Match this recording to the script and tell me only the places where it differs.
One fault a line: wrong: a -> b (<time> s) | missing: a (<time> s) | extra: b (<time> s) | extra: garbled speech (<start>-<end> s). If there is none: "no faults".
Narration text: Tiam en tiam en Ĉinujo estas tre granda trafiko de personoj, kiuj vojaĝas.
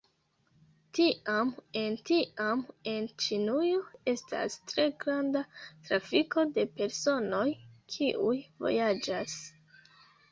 no faults